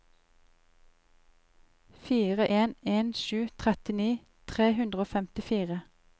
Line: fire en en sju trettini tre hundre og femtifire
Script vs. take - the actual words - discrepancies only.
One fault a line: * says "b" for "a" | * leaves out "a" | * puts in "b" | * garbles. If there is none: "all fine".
all fine